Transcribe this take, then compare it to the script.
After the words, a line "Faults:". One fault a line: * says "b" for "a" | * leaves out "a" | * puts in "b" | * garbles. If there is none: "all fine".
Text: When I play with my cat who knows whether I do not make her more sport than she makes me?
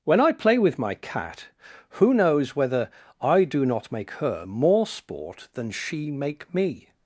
When I play with my cat who knows whether I do not make her more sport than she make me?
Faults:
* says "make" for "makes"